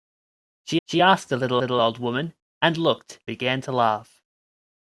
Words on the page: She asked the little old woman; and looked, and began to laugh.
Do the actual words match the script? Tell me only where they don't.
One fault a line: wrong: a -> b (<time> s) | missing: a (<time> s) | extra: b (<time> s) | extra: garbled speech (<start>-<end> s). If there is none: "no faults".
extra: she (0.9 s)
extra: little (1.6 s)
missing: and (3.2 s)